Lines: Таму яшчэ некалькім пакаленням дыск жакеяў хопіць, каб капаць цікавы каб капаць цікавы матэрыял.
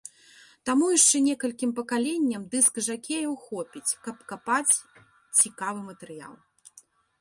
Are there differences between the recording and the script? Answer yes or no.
yes